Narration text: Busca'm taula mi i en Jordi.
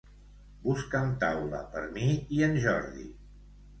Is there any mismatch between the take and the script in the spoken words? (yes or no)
yes